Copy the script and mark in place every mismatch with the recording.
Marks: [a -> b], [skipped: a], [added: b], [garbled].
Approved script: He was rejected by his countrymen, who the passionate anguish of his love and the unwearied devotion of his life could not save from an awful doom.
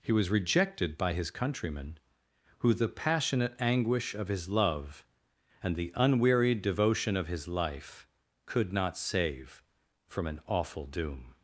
He was rejected by his countrymen, who the passionate anguish of his love and the unwearied devotion of his life could not save from an awful doom.